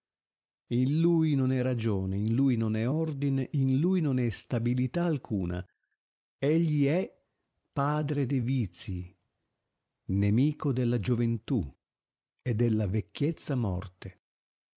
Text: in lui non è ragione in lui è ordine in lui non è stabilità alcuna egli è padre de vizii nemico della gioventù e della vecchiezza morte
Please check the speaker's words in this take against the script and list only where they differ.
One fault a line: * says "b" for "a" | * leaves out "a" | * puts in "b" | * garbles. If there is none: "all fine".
* puts in "non"